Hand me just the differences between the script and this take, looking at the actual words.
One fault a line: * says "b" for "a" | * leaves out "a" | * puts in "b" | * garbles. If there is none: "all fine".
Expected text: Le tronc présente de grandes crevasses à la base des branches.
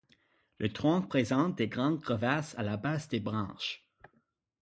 all fine